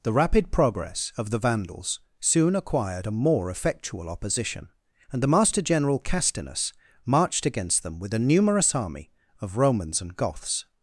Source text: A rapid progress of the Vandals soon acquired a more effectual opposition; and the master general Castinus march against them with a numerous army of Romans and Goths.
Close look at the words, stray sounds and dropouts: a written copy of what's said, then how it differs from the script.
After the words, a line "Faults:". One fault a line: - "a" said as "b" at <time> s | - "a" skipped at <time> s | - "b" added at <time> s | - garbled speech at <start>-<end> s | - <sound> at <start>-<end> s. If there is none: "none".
The rapid progress of the Vandals soon acquired a more effectual opposition; and the master general Castinus marched against them with a numerous army of Romans and Goths.
Faults:
- "A" said as "The" at 0.0 s
- "march" said as "marched" at 7.0 s